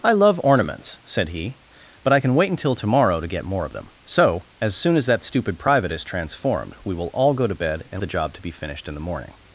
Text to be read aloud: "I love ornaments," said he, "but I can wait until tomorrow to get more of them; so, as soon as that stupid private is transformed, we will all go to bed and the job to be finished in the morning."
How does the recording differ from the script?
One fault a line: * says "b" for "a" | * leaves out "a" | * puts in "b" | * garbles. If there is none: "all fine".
all fine